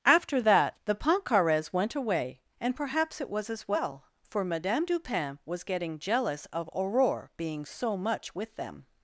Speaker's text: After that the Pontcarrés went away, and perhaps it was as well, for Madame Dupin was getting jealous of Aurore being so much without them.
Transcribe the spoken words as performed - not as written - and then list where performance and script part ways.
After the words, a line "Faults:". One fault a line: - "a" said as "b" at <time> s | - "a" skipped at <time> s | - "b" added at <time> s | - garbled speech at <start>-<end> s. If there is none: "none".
After that the Pontcarrés went away, and perhaps it was as well, for Madame Dupin was getting jealous of Aurore being so much with them.
Faults:
- "without" said as "with" at 8.3 s